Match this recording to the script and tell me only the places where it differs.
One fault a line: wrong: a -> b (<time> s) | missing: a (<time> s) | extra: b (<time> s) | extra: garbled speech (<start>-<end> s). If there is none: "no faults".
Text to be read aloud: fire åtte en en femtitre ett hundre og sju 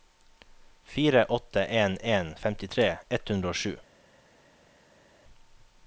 no faults